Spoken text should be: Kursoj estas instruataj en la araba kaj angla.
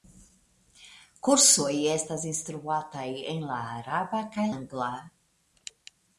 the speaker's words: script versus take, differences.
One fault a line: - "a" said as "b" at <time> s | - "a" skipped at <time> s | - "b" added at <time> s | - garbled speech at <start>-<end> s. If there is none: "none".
none